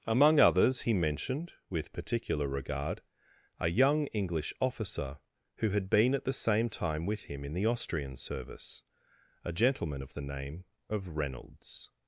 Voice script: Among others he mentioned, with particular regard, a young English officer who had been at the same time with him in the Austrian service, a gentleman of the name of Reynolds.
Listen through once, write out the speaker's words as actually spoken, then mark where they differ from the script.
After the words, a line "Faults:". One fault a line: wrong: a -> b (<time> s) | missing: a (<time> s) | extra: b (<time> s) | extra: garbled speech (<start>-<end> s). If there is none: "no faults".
Among others he mentioned, with particular regard, a young English officer who had been at the same time with him in the Austrian service, a gentleman of the name of Reynolds.
Faults:
no faults